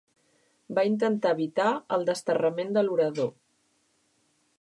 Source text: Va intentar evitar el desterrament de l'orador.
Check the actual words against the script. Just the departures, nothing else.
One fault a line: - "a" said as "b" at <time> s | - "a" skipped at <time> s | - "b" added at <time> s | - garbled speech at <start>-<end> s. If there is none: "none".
none